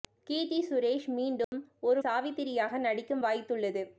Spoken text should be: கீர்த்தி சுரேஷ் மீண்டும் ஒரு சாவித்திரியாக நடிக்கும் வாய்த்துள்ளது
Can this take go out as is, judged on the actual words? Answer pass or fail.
pass